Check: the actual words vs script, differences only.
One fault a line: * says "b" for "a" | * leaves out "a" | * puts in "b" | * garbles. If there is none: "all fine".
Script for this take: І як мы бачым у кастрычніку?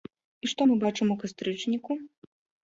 * says "што" for "як"